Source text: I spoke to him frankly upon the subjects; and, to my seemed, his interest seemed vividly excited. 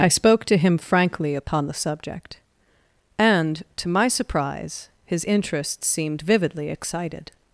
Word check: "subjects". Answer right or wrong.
wrong